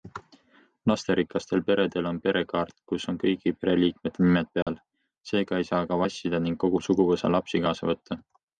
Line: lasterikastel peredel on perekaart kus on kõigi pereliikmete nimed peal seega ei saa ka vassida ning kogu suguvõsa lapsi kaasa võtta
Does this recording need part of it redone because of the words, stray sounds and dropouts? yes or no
yes